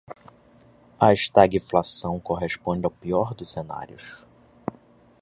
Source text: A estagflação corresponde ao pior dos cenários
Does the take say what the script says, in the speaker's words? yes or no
yes